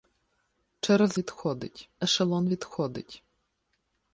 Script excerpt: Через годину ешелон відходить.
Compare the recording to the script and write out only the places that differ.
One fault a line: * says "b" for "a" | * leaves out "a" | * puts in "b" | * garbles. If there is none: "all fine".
* says "відходить" for "годину"